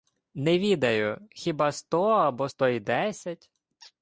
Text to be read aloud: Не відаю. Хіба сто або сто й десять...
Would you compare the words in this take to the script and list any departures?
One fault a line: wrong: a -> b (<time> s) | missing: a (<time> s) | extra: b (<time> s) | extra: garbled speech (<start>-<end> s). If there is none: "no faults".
no faults